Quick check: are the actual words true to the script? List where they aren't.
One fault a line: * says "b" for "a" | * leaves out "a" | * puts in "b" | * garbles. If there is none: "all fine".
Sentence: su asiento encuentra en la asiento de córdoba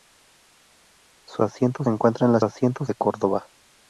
all fine